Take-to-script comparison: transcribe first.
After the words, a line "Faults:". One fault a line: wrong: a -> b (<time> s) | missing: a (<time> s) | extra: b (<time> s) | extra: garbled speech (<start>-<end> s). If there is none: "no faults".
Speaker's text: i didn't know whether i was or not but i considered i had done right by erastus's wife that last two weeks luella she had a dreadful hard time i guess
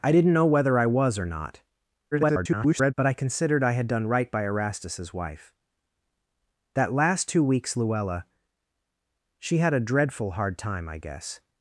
i didn't know whether i was or not [garbled] but i considered i had done right by erastus's wife that last two weeks luella she had a dreadful hard time i guess
Faults:
extra: garbled speech (2.1-2.9 s)